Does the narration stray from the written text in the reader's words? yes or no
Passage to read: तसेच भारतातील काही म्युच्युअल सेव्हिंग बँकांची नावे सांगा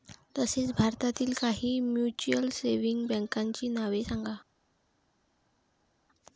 no